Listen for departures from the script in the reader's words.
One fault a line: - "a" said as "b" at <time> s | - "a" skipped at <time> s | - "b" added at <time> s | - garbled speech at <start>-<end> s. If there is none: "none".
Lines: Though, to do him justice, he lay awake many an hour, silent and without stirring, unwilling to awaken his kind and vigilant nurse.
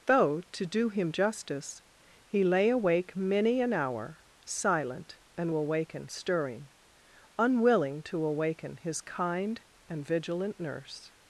- "without" said as "awaken" at 5.5 s